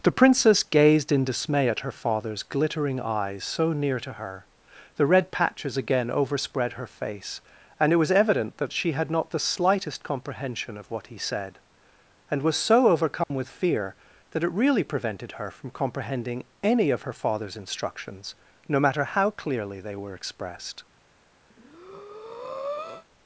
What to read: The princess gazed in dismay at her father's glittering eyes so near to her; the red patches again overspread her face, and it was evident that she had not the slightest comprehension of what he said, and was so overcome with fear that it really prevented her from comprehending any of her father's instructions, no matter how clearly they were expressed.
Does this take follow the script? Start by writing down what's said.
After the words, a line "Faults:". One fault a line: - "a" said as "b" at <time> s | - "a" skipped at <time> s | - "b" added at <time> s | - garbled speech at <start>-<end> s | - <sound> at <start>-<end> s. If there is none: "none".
The princess gazed in dismay at her father's glittering eyes so near to her; the red patches again overspread her face, and it was evident that she had not the slightest comprehension of what he said, and was so overcome with fear that it really prevented her from comprehending any of her father's instructions, no matter how clearly they were expressed.
Faults:
- dropout at 13.2-13.3 s
- breath at 21.5-23.1 s